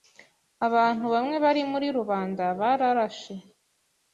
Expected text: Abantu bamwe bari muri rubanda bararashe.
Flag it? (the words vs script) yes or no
no